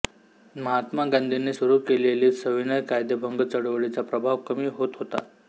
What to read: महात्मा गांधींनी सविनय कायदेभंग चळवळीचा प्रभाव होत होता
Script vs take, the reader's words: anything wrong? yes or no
yes